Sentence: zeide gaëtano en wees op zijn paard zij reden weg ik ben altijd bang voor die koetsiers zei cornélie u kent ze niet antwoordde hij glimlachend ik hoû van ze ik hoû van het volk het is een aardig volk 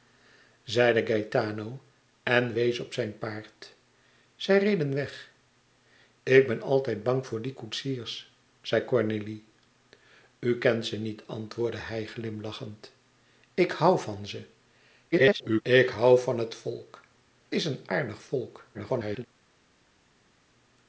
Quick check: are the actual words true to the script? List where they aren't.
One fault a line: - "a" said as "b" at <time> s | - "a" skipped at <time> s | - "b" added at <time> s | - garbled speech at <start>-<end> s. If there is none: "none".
- garbled speech at 15.1-15.6 s
- "het" skipped at 17.0 s
- garbled speech at 18.7-19.3 s